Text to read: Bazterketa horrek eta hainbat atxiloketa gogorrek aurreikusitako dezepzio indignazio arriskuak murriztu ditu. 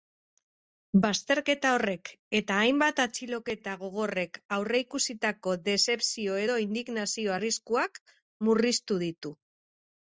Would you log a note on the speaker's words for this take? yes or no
yes